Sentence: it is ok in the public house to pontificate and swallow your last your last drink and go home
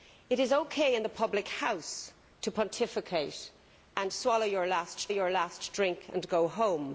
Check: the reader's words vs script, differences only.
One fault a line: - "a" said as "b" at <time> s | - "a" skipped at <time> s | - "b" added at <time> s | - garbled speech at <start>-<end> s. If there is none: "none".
none